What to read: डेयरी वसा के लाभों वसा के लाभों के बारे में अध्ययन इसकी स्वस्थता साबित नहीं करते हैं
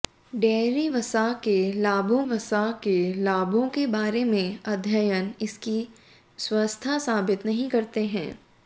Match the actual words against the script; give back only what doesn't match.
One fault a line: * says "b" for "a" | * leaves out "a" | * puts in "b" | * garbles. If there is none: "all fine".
all fine